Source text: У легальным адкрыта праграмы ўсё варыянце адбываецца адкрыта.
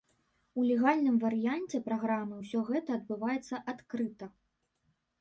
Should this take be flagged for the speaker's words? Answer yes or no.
yes